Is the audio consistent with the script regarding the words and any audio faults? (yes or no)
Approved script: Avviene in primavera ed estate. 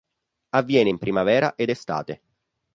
yes